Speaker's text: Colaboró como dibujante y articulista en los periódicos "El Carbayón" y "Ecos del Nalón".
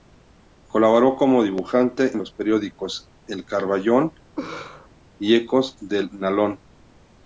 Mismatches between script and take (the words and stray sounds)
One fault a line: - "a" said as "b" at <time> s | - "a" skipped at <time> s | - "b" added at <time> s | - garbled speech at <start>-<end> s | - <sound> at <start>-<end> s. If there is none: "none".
- "y articulista" skipped at 2.1 s
- laugh at 4.4-4.9 s